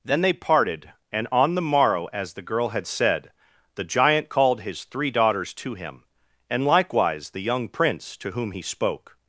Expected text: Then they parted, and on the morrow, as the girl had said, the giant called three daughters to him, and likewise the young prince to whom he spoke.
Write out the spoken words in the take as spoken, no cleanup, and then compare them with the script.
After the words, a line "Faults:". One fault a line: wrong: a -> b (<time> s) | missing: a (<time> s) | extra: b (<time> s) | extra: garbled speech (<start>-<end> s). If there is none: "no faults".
Then they parted, and on the morrow, as the girl had said, the giant called his three daughters to him, and likewise the young prince to whom he spoke.
Faults:
extra: his (4.6 s)